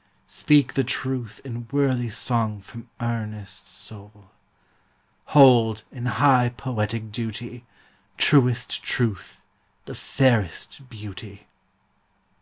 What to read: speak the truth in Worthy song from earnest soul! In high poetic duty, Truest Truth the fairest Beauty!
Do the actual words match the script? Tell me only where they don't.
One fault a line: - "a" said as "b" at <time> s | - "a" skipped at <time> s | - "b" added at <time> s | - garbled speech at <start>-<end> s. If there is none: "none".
- "Hold" added at 5.3 s